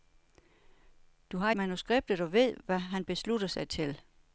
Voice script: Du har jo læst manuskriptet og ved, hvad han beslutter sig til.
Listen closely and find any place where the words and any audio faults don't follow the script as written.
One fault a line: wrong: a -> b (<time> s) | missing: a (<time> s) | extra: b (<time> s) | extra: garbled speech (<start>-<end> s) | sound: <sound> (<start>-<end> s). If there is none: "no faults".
missing: jo læst (1.5 s)